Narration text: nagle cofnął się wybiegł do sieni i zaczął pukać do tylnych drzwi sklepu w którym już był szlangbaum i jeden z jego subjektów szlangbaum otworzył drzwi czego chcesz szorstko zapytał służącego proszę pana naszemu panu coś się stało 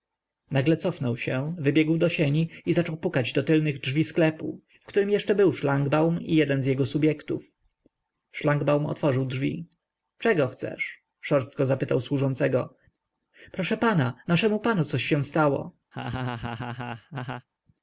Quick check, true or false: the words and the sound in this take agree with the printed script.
false